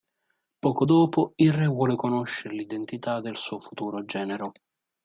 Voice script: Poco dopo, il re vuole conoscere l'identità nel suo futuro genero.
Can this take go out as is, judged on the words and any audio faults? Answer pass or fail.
fail